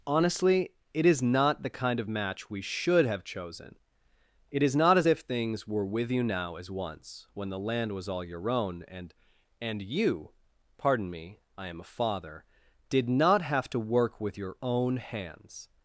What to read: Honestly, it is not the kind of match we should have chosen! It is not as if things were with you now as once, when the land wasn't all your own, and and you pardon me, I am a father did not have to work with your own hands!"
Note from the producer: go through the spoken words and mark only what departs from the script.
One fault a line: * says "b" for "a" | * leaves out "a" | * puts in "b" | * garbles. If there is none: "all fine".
* says "was" for "wasn't"